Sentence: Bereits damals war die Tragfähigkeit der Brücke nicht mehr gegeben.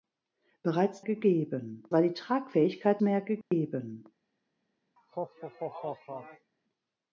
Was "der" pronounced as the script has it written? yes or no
no